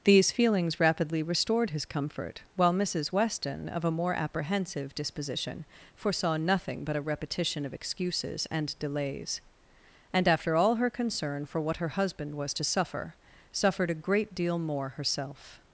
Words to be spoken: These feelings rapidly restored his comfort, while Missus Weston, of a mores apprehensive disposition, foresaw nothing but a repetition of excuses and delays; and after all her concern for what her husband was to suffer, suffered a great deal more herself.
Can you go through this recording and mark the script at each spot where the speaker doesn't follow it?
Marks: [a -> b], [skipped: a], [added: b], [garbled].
These feelings rapidly restored his comfort, while Missus Weston, of a [mores -> more] apprehensive disposition, foresaw nothing but a repetition of excuses and delays; and after all her concern for what her husband was to suffer, suffered a great deal more herself.